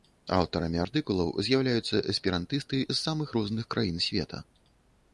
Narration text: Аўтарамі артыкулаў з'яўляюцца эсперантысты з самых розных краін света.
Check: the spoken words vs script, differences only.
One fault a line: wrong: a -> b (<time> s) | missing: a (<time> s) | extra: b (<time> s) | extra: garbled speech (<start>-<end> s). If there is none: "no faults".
no faults